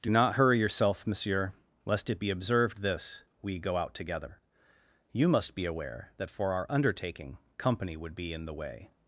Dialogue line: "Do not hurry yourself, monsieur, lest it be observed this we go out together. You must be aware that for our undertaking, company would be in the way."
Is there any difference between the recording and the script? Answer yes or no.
no